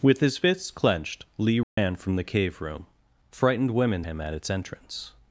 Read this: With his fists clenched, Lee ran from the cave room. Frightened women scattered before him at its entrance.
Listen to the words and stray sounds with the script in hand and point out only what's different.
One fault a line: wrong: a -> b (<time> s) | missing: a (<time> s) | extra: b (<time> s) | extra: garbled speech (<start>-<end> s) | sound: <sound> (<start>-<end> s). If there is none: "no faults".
sound: dropout (1.6-1.8 s)
missing: scattered before (4.0 s)